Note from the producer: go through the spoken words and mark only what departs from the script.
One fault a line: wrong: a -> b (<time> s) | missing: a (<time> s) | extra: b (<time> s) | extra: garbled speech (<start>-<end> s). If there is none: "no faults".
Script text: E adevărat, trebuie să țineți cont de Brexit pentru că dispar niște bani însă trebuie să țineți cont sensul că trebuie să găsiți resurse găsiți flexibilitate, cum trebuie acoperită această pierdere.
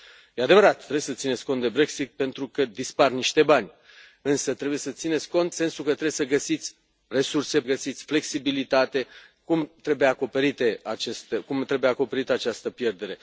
no faults